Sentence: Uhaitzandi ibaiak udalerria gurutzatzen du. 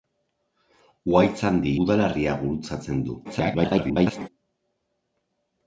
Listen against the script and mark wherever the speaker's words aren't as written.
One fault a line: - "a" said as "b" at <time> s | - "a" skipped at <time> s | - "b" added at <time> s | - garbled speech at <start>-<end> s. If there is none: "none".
- "ibaiak" skipped at 1.7 s
- garbled speech at 3.2-4.3 s